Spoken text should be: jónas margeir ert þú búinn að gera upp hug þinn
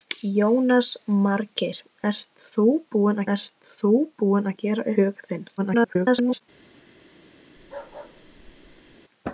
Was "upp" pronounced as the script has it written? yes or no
no